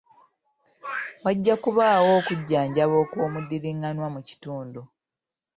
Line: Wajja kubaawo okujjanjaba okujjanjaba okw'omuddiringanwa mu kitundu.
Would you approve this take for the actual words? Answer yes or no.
no